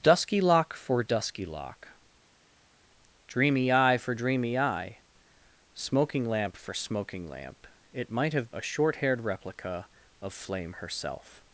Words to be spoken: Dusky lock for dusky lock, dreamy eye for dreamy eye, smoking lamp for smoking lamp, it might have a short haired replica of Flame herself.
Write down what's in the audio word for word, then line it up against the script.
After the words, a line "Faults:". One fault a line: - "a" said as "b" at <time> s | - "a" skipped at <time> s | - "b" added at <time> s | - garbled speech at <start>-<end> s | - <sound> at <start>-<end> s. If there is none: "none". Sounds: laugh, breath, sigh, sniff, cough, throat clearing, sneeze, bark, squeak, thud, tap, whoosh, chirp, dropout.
Dusky lock for dusky lock, dreamy eye for dreamy eye, smoking lamp for smoking lamp, it might have a short haired replica of Flame herself.
Faults:
none